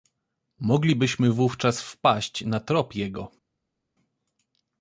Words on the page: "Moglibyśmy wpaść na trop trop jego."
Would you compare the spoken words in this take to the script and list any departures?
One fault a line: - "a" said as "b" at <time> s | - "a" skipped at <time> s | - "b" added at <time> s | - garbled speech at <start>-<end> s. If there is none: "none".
- "wówczas" added at 1.3 s
- "trop" skipped at 3.0 s